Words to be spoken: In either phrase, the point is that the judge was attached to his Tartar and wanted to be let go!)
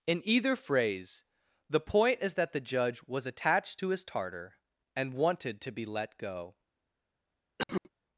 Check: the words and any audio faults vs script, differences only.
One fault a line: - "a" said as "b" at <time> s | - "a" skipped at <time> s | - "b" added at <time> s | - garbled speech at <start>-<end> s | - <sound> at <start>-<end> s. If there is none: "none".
- cough at 7.6-7.9 s